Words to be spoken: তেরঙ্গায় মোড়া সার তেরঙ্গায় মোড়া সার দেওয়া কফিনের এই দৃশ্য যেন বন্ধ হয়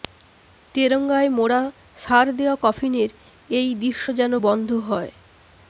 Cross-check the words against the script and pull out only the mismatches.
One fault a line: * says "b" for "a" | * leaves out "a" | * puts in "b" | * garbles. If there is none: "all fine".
* leaves out "তেরঙ্গায় মোড়া সার"